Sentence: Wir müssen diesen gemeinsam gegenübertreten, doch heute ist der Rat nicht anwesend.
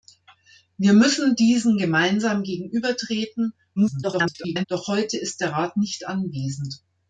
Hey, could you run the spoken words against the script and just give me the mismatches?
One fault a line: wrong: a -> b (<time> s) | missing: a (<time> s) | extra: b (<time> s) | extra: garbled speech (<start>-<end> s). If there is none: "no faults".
extra: garbled speech (3.8-4.6 s)